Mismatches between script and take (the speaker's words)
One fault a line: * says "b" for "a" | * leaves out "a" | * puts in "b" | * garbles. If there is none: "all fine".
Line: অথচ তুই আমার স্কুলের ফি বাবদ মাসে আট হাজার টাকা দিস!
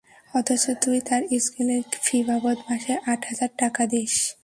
* says "তার" for "আমার"